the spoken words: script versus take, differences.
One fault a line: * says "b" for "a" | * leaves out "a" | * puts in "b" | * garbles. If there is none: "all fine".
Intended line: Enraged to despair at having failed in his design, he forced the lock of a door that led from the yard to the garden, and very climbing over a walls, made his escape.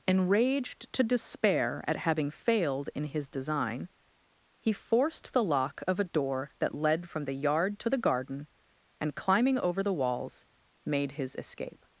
* leaves out "very"
* says "the" for "a"